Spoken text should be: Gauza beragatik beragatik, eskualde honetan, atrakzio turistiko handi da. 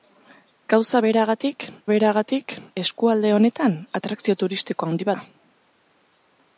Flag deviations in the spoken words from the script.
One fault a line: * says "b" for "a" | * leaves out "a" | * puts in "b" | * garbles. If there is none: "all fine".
all fine